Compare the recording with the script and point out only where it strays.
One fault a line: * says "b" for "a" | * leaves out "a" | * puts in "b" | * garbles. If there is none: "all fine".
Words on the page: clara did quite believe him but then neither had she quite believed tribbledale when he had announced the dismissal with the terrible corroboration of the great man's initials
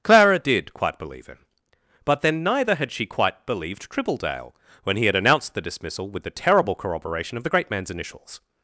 all fine